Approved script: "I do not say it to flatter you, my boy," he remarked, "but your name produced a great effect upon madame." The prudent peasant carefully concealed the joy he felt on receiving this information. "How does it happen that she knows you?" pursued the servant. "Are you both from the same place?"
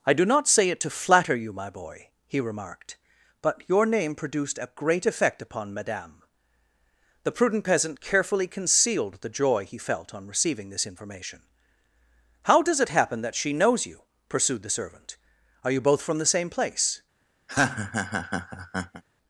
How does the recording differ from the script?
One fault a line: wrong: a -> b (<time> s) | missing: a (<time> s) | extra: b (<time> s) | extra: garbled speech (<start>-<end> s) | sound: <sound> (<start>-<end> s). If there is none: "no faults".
sound: laugh (17.5-19.0 s)